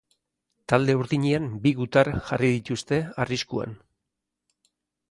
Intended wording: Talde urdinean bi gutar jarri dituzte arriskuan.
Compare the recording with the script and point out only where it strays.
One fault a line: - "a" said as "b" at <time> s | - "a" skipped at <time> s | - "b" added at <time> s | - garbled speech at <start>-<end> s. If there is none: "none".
none